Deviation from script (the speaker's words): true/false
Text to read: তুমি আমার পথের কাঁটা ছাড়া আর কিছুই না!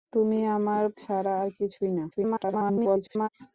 true